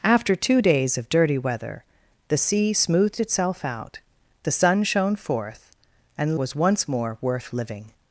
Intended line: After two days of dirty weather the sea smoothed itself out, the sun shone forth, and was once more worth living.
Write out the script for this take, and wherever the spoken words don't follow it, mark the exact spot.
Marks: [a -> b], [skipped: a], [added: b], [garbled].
After two days of dirty weather the sea smoothed itself out, the sun shone forth, and was once more worth living.